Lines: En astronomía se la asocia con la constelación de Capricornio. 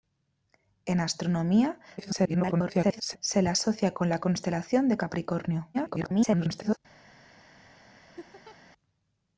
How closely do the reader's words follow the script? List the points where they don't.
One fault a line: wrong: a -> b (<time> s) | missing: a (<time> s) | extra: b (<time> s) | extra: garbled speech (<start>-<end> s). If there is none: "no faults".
extra: garbled speech (2.0-3.2 s)
extra: garbled speech (5.7-6.8 s)